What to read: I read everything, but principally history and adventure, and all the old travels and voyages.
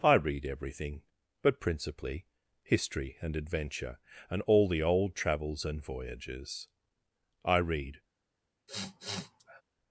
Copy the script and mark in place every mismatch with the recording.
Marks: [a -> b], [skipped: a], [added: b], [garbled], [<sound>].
I read everything, but principally history and adventure, and all the old travels and voyages. [added: I read] [sniff]